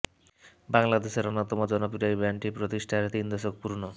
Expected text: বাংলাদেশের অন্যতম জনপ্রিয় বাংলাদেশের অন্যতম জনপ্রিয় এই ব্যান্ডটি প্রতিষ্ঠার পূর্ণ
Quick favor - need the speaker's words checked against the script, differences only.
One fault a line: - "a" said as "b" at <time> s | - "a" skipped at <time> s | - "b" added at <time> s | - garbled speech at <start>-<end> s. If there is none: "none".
- "বাংলাদেশের অন্যতম জনপ্রিয়" skipped at 2.1 s
- "তিন দশক" added at 3.1 s